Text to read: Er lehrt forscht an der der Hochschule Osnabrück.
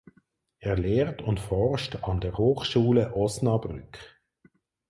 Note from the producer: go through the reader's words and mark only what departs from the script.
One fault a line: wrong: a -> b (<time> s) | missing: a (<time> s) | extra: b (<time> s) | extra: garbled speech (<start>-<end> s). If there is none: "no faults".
extra: und (1.2 s)
missing: der (2.4 s)